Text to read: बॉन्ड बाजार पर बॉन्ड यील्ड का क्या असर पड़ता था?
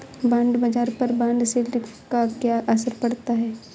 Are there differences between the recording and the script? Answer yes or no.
yes